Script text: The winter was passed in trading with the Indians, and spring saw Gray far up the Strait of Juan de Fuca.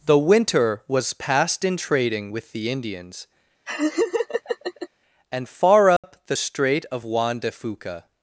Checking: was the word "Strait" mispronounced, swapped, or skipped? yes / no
no